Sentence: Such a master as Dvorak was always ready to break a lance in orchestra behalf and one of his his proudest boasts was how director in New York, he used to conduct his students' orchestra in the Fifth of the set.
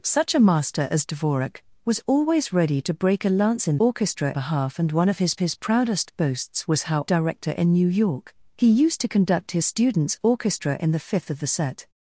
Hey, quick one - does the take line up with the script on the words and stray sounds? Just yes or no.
yes